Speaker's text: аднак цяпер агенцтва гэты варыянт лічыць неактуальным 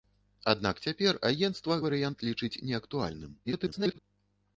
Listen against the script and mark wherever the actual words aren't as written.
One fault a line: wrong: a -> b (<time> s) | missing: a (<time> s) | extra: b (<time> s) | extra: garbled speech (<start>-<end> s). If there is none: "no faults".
missing: гэты (1.8 s)
extra: garbled speech (3.4-4.0 s)